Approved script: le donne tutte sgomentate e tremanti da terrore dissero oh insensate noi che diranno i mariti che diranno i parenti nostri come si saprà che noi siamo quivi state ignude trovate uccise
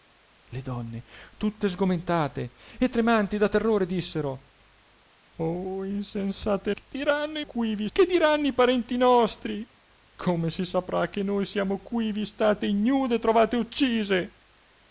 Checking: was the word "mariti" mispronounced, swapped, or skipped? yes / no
yes